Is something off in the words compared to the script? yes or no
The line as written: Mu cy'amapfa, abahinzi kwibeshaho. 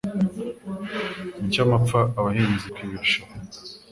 no